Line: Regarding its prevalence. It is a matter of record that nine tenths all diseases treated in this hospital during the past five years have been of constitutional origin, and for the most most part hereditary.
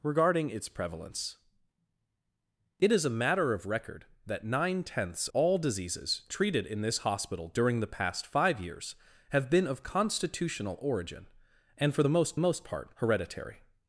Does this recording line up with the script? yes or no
yes